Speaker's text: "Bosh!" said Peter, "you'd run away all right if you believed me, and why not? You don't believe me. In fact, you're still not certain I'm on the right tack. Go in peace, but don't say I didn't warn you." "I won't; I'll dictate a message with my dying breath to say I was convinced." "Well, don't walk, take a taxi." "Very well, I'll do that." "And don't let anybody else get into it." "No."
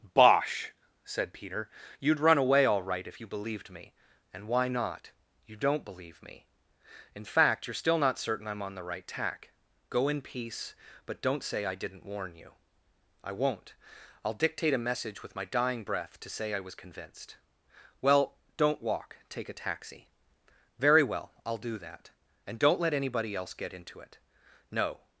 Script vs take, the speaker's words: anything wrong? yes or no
no